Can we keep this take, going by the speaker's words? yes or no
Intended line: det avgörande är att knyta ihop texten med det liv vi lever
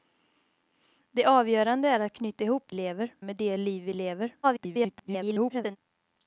no